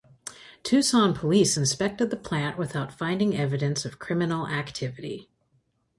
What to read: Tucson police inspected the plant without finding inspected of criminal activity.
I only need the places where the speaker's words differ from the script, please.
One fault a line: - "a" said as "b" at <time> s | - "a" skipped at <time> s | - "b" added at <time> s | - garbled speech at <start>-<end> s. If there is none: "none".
- "inspected" said as "evidence" at 3.4 s